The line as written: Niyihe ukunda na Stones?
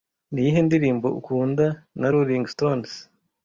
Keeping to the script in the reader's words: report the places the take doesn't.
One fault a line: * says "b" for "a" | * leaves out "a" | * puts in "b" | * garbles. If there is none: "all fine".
* puts in "ndirimbo"
* puts in "Rolling"